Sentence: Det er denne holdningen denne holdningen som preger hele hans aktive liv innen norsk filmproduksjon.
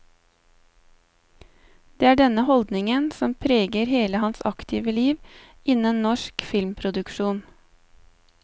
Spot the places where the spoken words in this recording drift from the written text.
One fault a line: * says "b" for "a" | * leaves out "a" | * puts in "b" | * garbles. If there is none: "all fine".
* leaves out "denne holdningen"